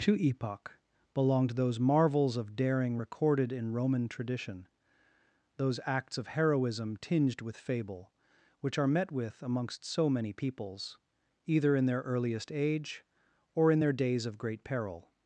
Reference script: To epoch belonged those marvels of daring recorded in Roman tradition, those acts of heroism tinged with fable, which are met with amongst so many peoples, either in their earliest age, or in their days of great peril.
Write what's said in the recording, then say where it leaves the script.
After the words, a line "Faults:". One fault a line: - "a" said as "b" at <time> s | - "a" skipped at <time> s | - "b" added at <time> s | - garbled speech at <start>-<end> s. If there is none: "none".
To epoch belonged those marvels of daring recorded in Roman tradition, those acts of heroism tinged with fable, which are met with amongst so many peoples, either in their earliest age, or in their days of great peril.
Faults:
none